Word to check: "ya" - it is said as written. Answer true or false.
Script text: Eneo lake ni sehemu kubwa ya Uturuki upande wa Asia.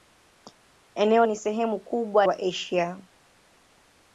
false